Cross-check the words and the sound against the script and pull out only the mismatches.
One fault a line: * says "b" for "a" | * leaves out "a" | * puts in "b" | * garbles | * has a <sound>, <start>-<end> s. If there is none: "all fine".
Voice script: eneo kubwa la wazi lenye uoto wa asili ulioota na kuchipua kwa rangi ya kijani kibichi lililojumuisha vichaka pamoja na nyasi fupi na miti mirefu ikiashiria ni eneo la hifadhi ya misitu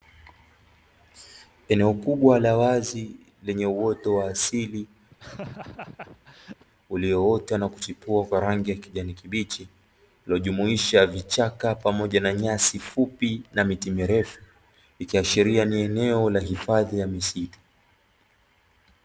* has a laugh, 5.1-6.6 s